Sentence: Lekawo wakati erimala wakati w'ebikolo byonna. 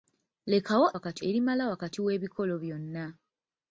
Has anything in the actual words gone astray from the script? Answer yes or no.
no